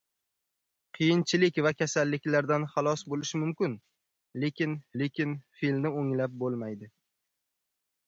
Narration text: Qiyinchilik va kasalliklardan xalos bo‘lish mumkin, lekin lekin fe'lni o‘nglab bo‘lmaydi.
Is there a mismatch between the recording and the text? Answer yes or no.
no